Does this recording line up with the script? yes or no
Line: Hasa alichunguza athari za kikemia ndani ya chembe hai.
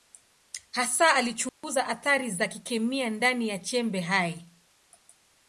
yes